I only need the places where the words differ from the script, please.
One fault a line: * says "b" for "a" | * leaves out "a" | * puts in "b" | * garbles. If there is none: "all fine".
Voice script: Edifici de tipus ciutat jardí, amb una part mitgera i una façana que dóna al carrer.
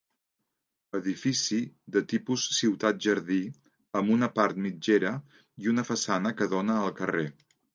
all fine